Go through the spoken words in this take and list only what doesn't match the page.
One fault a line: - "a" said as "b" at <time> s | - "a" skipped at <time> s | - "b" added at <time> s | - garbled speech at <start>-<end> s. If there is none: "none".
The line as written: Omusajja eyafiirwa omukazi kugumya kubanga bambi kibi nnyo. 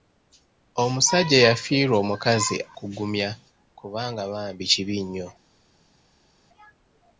none